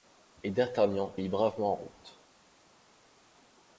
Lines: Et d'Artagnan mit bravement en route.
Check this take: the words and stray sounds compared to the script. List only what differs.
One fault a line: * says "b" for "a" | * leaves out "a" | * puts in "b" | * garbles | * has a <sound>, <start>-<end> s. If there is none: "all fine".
all fine